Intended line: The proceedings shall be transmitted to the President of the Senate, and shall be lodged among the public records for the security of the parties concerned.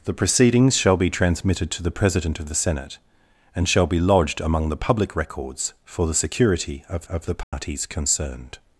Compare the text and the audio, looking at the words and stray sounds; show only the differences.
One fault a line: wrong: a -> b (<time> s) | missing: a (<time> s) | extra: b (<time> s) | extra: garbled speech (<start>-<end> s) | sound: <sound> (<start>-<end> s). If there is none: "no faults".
extra: of (7.1 s)
sound: dropout (7.4-7.5 s)